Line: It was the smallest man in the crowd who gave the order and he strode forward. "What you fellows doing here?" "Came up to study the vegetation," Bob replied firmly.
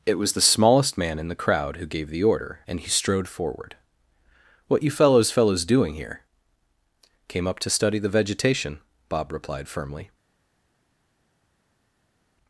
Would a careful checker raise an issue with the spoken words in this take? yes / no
yes